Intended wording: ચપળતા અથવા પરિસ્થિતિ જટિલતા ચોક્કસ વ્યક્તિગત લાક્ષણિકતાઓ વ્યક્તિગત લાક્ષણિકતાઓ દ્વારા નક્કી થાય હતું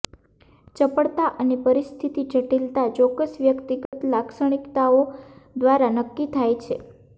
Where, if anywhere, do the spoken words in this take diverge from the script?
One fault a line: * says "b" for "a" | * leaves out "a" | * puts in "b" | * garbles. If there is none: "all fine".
* says "અને" for "અથવા"
* leaves out "વ્યક્તિગત લાક્ષણિકતાઓ"
* says "છે" for "હતું"